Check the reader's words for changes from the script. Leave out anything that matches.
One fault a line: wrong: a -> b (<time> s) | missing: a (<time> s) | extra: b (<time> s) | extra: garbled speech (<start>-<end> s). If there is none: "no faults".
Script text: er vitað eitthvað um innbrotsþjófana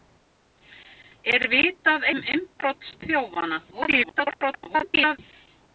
missing: eitthvað (2.1 s)
extra: garbled speech (3.7-5.2 s)